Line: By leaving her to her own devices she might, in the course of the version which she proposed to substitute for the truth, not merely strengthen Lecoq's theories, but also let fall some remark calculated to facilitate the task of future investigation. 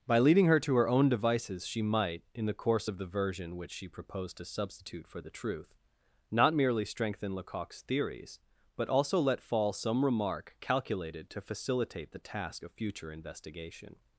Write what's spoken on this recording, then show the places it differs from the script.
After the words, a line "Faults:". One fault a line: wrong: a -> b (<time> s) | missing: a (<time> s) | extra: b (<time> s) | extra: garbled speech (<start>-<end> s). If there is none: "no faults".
By leading her to her own devices she might, in the course of the version which she proposed to substitute for the truth, not merely strengthen Lecoq's theories, but also let fall some remark calculated to facilitate the task of future investigation.
Faults:
wrong: leaving -> leading (0.2 s)